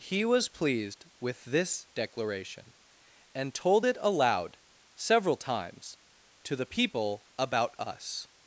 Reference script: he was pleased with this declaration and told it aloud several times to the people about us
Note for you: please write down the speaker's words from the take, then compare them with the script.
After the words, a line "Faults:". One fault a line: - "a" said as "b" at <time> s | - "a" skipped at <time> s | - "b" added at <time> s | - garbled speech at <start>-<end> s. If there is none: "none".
he was pleased with this declaration and told it aloud several times to the people about us
Faults:
none